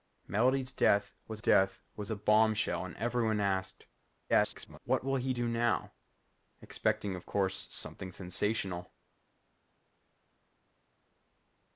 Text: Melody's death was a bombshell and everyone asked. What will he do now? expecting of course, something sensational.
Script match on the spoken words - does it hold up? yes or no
no